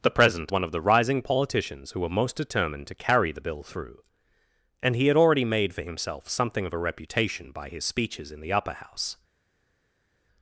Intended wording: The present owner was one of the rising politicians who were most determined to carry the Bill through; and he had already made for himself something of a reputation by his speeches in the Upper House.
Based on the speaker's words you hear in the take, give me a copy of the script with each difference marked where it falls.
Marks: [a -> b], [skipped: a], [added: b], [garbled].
The present [skipped: owner was] one of the rising politicians who were most determined to carry the Bill through; and he had already made for himself something of a reputation by his speeches in the Upper House.